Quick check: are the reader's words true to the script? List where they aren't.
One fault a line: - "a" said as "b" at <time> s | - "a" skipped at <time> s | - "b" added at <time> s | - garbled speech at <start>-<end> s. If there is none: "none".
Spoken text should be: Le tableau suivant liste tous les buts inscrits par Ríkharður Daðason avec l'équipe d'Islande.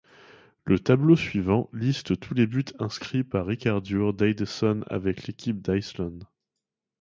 none